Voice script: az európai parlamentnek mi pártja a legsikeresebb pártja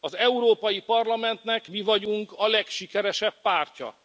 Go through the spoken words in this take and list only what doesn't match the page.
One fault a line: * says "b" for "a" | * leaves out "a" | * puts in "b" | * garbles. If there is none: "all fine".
* says "vagyunk" for "pártja"